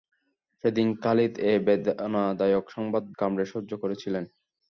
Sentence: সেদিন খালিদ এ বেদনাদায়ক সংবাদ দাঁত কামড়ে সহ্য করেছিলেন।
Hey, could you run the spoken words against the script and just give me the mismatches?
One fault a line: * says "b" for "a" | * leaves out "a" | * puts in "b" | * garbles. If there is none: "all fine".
* leaves out "দাঁত"